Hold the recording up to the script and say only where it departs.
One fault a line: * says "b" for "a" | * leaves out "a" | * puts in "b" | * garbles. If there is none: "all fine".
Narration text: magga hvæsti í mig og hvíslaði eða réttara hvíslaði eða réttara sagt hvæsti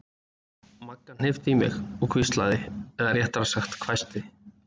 * says "hnippti" for "hvæsti"
* leaves out "hvíslaði eða réttara"